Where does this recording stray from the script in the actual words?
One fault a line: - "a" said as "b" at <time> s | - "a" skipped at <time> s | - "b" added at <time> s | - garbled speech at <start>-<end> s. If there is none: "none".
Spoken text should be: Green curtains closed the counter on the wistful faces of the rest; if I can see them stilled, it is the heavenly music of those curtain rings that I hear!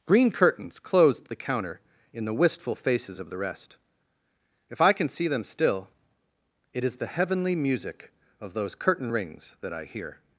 - "on" said as "in" at 2.1 s
- "stilled" said as "still" at 5.4 s